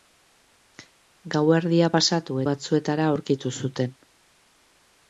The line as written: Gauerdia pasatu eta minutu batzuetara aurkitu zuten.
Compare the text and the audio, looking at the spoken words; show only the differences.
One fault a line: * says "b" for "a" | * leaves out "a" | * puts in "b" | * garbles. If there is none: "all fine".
* leaves out "eta minutu"